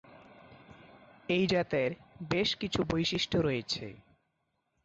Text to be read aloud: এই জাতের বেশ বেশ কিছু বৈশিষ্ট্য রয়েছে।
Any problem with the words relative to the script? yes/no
yes